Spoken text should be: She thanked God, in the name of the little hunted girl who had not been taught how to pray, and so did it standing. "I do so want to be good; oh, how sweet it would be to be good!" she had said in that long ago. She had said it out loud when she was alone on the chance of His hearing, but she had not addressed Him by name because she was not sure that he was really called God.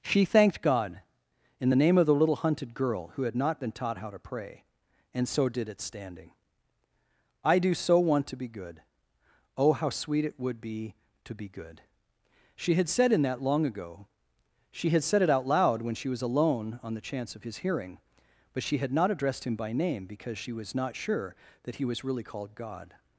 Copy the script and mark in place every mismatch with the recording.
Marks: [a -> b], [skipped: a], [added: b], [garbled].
She thanked God, in the name of the little hunted girl who had not been taught how to pray, and so did it standing. "I do so want to be good; oh, how sweet it would be to be good!" she had said in that long ago. She had said it out loud when she was alone on the chance of His hearing, but she had not addressed Him by name because she was not sure that he was really called God.